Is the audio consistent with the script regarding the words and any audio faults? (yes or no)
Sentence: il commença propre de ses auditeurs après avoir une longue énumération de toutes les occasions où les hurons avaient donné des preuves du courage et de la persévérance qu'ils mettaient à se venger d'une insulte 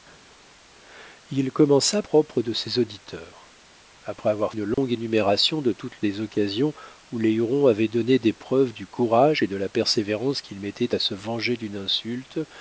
no